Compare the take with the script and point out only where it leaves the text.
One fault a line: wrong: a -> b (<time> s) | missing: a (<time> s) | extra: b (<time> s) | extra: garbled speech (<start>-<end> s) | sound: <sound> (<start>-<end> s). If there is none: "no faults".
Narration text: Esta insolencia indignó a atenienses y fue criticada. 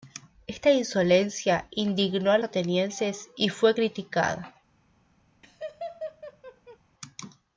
sound: laugh (5.4-6.8 s)